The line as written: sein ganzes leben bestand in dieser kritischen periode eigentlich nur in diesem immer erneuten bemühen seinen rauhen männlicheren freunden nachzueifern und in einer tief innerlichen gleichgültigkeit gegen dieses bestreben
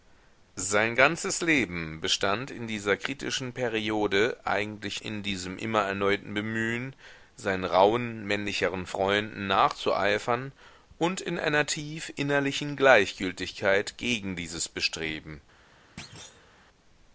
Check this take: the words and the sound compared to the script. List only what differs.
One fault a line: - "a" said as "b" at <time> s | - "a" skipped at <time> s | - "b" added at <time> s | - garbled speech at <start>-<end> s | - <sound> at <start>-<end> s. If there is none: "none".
- "nur" skipped at 5.0 s
- thud at 16.0-16.5 s